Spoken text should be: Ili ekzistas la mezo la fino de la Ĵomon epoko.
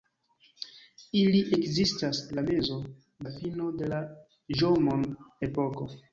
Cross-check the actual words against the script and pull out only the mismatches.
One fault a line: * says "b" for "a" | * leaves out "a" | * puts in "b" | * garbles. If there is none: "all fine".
all fine